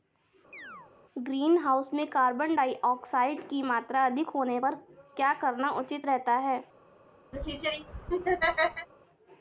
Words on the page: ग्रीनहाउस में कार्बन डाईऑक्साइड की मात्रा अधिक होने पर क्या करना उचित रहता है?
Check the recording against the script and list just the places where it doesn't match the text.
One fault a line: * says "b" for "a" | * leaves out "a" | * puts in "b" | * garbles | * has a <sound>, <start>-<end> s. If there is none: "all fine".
* has a chirp, 0.5-0.9 s
* has a laugh, 7.3-8.9 s